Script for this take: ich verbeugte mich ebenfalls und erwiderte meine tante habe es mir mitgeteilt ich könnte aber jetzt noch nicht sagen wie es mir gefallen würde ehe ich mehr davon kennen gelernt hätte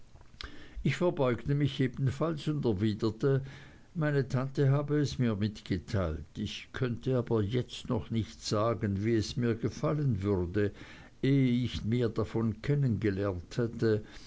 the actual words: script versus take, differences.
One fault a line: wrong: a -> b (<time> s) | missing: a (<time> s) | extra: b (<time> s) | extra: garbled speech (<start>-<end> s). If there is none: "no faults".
no faults